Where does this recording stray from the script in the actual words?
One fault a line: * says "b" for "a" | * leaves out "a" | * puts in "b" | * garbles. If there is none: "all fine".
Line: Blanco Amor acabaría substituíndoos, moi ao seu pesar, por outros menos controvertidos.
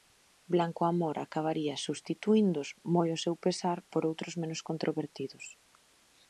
all fine